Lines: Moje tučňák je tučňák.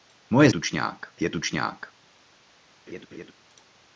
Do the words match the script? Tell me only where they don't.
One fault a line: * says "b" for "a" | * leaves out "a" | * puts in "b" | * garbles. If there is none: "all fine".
all fine